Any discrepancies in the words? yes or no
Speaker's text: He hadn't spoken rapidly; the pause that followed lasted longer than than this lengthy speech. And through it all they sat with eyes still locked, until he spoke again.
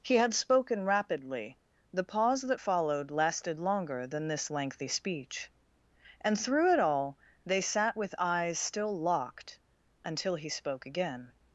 yes